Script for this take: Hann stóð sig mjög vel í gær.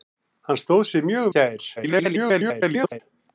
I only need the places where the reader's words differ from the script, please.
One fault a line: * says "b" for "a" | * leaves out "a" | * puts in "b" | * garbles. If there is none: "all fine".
* leaves out "vel"
* garbles